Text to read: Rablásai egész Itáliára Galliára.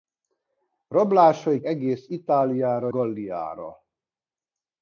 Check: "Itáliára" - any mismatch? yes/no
no